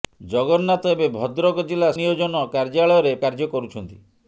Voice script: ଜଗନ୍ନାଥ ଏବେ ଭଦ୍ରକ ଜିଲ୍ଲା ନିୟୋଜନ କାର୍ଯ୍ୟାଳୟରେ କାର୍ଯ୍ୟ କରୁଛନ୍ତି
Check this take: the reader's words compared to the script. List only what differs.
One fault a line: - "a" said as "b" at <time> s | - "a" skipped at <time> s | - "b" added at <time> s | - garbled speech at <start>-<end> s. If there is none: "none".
none